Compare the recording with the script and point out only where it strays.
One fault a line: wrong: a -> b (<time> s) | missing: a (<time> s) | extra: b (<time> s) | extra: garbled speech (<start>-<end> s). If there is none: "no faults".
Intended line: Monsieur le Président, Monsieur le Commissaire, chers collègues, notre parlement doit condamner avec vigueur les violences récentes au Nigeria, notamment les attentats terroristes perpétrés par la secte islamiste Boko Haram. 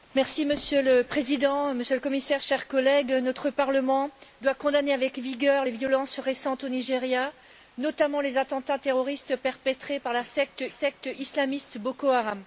extra: secte (10.7 s)